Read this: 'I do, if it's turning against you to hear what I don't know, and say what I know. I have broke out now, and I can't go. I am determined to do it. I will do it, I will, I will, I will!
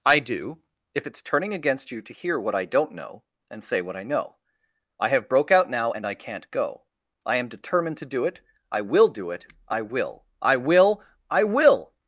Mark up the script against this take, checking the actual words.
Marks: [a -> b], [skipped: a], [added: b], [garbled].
'I do, if it's turning against you to hear what I don't know, and say what I know. I have broke out now, and I can't go. I am determined to do it. I will do it, I will, I will, I will!